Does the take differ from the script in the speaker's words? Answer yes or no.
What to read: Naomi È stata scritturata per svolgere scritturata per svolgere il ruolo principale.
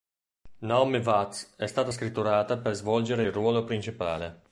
yes